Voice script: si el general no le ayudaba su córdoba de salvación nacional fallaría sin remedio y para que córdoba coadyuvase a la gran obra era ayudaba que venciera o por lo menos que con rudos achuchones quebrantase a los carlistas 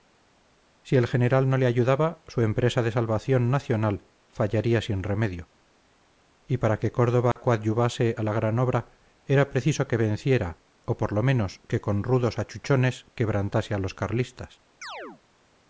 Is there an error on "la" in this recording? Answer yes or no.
no